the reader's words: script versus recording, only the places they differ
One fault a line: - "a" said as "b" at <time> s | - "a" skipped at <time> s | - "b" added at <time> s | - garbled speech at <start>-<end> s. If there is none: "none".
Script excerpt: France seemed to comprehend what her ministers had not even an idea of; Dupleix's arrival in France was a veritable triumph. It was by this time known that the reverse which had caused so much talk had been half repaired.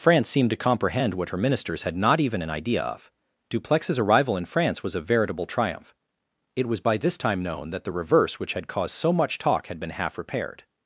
none